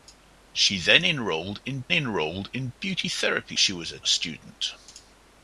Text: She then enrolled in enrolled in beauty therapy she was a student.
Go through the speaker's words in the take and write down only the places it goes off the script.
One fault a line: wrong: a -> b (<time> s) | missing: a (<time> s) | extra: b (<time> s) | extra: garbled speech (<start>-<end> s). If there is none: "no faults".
no faults